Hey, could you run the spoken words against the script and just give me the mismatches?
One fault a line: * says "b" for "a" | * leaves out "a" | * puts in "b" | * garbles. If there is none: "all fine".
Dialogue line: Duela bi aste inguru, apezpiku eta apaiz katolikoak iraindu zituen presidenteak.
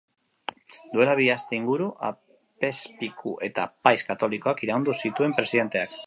all fine